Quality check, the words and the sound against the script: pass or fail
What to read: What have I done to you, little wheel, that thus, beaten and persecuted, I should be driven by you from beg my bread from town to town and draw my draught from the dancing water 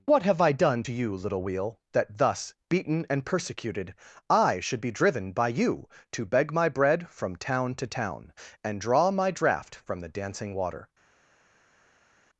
fail